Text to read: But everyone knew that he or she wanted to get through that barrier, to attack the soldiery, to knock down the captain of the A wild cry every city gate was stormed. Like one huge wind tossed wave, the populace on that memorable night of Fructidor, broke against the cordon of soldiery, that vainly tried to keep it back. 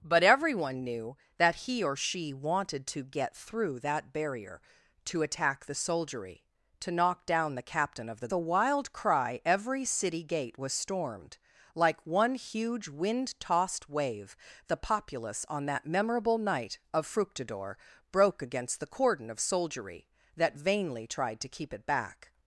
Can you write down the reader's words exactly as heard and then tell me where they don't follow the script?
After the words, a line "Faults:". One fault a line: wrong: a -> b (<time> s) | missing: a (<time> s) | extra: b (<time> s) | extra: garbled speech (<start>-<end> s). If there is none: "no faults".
But everyone knew that he or she wanted to get through that barrier, to attack the soldiery, to knock down the captain of the A wild cry every city gate was stormed. Like one huge wind tossed wave, the populace on that memorable night of Fructidor, broke against the cordon of soldiery, that vainly tried to keep it back.
Faults:
no faults